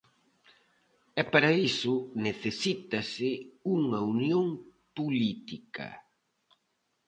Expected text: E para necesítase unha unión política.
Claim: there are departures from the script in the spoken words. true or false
true